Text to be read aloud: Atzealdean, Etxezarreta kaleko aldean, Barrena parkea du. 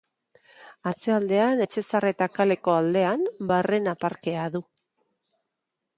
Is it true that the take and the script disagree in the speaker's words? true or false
false